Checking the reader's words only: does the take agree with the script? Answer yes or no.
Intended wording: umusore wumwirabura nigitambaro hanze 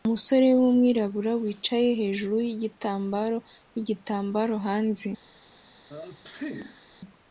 no